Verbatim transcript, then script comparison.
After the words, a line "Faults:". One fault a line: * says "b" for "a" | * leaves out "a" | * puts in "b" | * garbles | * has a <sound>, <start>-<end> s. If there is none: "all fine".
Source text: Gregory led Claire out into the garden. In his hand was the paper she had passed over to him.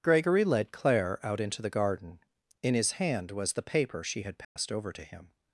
Gregory led Claire out into the garden. In his hand was the paper she had passed over to him.
Faults:
* has a dropout, 4.4-4.6 s